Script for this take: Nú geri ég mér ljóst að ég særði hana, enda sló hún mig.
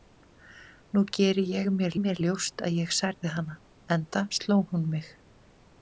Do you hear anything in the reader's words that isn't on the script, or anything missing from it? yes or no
yes